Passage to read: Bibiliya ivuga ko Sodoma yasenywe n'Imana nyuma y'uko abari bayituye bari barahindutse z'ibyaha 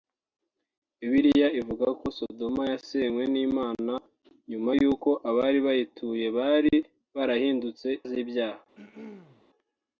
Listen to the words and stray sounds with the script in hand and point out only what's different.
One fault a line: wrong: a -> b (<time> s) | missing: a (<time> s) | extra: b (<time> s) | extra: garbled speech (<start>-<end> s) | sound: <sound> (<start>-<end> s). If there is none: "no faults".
sound: throat clearing (8.8-9.4 s)